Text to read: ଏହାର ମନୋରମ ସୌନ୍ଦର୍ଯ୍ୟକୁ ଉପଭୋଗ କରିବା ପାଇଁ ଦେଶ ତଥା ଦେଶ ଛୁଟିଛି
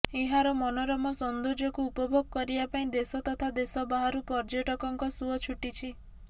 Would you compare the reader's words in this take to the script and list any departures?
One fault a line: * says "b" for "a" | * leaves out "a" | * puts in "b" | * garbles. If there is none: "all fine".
* puts in "ବାହାରୁ ପର୍ଯ୍ୟଟକଙ୍କ ସୁଅ"